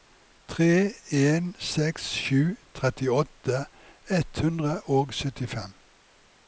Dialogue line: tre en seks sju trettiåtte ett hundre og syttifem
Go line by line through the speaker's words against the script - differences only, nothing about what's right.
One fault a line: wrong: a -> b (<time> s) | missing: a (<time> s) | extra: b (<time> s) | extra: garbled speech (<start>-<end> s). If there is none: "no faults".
no faults